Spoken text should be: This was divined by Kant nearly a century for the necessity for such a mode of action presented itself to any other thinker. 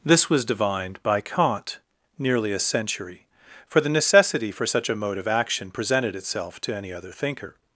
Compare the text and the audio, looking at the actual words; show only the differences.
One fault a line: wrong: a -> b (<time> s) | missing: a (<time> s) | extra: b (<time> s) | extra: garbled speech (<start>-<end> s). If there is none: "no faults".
no faults